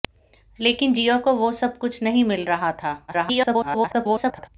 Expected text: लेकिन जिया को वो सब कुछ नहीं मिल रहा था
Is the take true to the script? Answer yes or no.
no